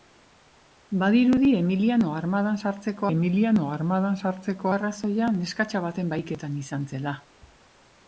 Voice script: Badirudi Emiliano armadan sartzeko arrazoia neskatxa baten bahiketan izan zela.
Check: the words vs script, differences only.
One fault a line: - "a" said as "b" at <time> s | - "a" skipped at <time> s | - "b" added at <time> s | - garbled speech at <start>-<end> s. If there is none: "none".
- "Emiliano armadan sartzeko" added at 3.1 s